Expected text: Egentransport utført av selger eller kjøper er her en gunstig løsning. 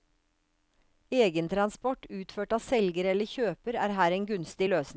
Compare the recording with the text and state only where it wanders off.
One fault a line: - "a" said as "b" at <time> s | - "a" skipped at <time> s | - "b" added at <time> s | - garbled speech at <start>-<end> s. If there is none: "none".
none